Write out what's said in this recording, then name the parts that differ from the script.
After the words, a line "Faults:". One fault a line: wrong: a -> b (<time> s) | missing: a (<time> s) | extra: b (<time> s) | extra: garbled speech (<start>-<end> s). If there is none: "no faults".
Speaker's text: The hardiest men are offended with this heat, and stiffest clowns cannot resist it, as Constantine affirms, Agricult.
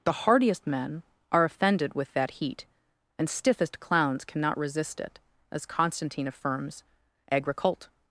The hardiest men are offended with that heat, and stiffest clowns cannot resist it, as Constantine affirms, Agricult.
Faults:
wrong: this -> that (2.1 s)